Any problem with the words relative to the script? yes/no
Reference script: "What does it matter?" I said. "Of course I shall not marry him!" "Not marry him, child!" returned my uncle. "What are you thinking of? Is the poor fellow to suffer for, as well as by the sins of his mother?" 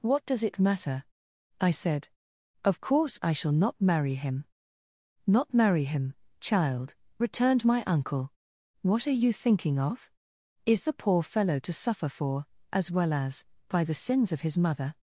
no